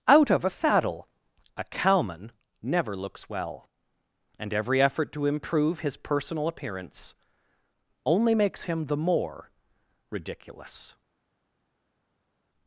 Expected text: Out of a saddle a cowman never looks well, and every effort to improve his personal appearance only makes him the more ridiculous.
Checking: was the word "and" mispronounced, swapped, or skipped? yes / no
no